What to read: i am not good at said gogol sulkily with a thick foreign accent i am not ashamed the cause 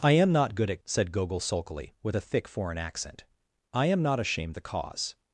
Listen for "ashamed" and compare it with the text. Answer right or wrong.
right